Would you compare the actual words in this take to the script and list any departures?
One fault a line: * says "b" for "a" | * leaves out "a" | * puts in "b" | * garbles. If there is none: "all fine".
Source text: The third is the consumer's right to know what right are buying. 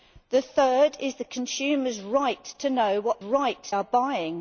all fine